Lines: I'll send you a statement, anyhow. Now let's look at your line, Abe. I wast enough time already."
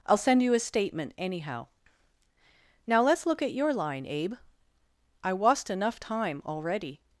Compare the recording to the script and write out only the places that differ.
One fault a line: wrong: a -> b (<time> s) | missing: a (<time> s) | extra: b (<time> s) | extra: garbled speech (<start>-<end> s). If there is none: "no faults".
no faults